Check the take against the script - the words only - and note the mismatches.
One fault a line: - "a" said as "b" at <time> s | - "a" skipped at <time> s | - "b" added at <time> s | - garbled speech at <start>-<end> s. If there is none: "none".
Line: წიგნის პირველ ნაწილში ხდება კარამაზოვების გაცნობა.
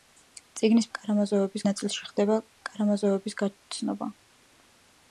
- "პირველ" said as "კარამაზოვების" at 1.0 s